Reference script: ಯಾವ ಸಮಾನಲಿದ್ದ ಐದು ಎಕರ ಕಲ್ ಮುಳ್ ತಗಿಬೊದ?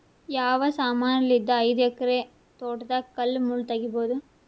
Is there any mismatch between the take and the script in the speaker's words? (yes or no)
yes